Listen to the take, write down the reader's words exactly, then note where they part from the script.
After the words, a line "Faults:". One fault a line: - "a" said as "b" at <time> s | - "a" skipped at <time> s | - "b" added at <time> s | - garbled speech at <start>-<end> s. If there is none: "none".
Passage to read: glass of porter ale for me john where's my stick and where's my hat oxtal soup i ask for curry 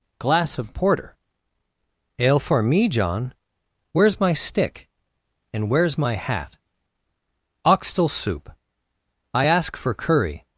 glass of porter ale for me john where's my stick and where's my hat oxtal soup i ask for curry
Faults:
none